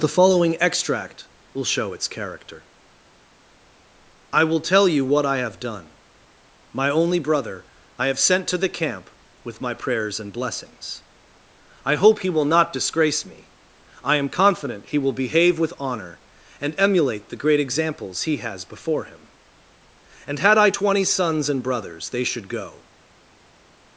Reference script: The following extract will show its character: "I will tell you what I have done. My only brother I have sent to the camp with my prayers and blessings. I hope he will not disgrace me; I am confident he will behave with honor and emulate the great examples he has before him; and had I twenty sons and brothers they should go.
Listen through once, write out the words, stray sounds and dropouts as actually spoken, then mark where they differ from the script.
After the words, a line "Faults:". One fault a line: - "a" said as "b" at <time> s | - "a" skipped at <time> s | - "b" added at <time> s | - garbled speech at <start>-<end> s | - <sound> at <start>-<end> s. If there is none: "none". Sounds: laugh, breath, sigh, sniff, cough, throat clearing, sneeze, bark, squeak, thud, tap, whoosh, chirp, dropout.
The following extract will show its character: "I will tell you what I have done. My only brother I have sent to the camp with my prayers and blessings. I hope he will not disgrace me; I am confident he will behave with honor and emulate the great examples he has before him; and had I twenty sons and brothers they should go.
Faults:
none